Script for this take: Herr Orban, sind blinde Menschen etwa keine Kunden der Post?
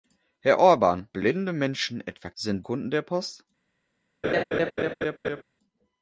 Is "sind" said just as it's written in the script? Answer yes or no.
no